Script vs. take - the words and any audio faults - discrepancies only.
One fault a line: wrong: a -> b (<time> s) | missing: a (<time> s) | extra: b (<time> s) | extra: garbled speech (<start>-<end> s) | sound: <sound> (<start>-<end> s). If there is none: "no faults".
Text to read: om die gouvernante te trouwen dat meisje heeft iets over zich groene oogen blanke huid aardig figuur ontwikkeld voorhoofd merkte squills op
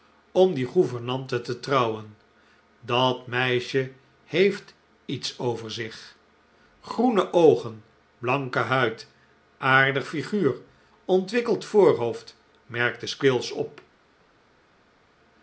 no faults